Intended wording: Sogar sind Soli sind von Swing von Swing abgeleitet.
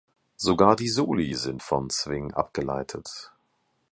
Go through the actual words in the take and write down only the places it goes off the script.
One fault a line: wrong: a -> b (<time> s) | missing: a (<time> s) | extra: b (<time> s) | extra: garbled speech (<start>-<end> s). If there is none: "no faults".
wrong: sind -> die (0.8 s)
missing: von Swing (2.3 s)